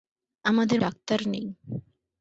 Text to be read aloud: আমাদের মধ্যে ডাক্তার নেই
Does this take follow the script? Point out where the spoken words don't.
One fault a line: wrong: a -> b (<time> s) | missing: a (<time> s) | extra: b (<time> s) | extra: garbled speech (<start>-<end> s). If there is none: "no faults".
missing: মধ্যে (0.8 s)